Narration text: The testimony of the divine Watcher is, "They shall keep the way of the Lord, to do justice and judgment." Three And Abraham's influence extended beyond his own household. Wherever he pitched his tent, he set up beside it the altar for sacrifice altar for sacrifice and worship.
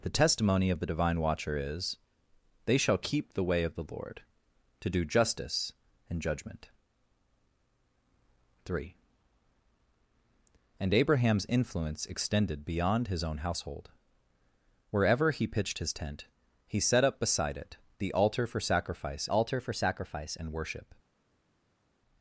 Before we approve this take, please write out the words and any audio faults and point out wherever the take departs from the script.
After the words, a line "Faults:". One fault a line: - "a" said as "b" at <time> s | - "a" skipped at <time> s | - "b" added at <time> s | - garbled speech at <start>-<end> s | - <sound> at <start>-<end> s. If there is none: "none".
The testimony of the divine Watcher is, "They shall keep the way of the Lord, to do justice and judgment." Three And Abraham's influence extended beyond his own household. Wherever he pitched his tent, he set up beside it the altar for sacrifice altar for sacrifice and worship.
Faults:
none